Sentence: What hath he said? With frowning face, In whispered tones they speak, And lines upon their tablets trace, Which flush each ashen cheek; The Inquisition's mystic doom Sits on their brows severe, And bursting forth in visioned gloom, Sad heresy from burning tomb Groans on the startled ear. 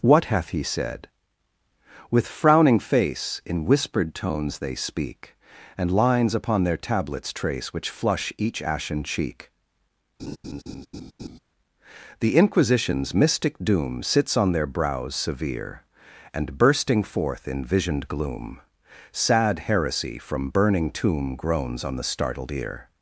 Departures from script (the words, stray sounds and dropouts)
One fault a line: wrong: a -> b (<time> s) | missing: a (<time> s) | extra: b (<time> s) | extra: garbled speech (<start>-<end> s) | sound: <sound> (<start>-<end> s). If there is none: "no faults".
sound: laugh (10.2-11.4 s)